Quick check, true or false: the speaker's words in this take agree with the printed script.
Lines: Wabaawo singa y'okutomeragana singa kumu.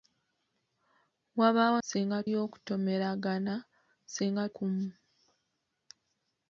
true